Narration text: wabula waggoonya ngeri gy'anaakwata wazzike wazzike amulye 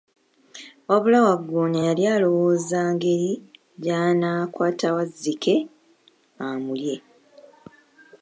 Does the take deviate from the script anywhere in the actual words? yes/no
yes